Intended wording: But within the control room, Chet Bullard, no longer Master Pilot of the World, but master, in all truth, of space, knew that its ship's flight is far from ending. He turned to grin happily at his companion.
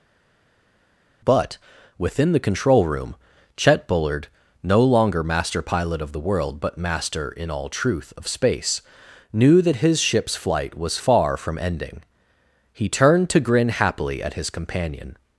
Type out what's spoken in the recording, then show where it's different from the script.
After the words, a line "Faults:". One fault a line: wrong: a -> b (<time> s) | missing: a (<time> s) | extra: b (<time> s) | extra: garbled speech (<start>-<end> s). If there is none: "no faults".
But within the control room, Chet Bullard, no longer Master Pilot of the World, but master, in all truth, of space, knew that his ship's flight was far from ending. He turned to grin happily at his companion.
Faults:
wrong: its -> his (9.8 s)
wrong: is -> was (10.8 s)